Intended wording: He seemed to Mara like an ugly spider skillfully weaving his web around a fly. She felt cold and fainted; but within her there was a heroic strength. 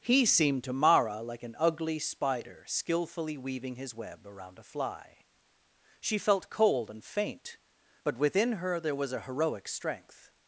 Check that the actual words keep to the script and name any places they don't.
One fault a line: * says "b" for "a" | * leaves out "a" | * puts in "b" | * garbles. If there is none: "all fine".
* says "faint" for "fainted"